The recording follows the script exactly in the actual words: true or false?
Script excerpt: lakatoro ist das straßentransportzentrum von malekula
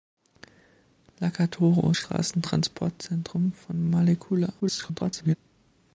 false